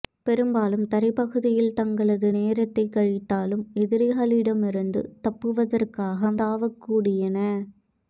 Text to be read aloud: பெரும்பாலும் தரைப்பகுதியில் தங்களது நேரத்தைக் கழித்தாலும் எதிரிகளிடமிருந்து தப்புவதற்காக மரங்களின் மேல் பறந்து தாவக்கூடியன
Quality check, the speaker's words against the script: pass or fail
fail